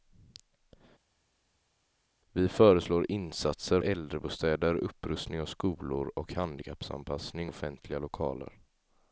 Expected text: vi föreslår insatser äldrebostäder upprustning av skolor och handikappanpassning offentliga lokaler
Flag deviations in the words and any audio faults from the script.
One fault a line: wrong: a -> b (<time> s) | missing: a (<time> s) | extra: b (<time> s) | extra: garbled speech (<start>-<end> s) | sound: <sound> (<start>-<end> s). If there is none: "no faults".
no faults